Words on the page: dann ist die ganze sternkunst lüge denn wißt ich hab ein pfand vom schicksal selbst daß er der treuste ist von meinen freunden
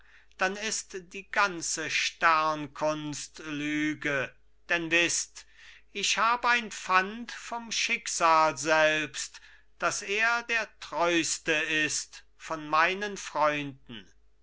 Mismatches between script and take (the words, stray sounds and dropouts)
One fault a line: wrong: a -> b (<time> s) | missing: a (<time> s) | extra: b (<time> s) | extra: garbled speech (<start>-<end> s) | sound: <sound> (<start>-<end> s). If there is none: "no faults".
no faults